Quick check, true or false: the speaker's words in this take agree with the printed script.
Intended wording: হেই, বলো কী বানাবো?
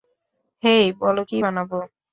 true